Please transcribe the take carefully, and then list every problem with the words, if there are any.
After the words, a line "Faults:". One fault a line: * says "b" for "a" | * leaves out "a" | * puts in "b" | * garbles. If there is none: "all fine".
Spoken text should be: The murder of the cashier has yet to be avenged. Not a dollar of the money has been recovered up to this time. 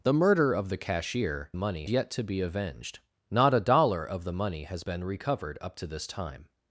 The murder of the cashier money yet to be avenged. Not a dollar of the money has been recovered up to this time.
Faults:
* says "money" for "has"